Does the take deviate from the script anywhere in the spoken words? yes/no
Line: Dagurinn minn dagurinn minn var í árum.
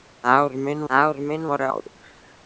no